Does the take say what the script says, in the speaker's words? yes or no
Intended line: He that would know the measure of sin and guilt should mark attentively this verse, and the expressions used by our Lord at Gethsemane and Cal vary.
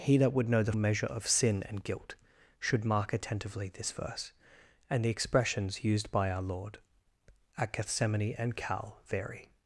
yes